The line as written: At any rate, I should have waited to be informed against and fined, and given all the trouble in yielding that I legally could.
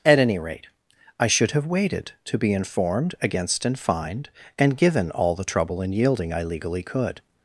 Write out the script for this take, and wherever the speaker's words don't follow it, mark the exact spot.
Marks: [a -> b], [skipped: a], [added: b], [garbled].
At any rate, I should have waited to be informed against and fined, and given all the trouble in yielding [skipped: that] I legally could.